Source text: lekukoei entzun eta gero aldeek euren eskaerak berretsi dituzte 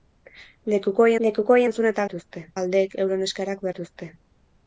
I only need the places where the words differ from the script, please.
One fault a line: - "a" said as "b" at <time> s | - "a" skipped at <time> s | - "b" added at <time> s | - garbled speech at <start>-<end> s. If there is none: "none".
- "lekukoei" added at 1.3 s
- "gero" said as "dituzte" at 2.1 s
- "berretsi" skipped at 3.7 s